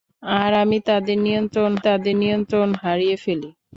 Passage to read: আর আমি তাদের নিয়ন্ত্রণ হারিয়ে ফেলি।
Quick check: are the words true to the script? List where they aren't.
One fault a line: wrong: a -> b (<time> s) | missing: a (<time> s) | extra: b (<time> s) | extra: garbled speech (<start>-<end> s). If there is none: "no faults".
extra: তাদের নিয়ন্ত্রণ (1.8 s)